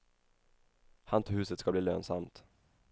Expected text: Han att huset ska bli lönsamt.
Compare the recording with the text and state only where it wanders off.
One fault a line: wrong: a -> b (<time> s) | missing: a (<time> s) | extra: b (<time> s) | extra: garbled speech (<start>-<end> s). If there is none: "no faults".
no faults